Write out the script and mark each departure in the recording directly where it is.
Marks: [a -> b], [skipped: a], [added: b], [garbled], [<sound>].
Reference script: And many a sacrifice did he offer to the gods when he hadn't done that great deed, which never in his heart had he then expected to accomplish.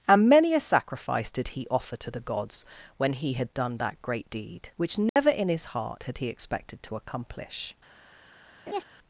And many a sacrifice did he offer to the gods when he [hadn't -> had] done that great deed, which never [dropout] in his heart had he [skipped: then] expected to accomplish. [laugh]